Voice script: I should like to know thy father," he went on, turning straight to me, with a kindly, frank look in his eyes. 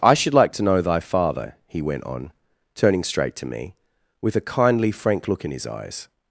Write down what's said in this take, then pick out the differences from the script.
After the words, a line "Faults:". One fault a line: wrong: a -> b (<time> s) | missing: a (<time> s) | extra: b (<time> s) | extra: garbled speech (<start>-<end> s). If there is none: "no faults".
I should like to know thy father," he went on, turning straight to me, with a kindly, frank look in his eyes.
Faults:
no faults